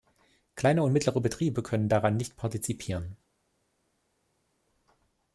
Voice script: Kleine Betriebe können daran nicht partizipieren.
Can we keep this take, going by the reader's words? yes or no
no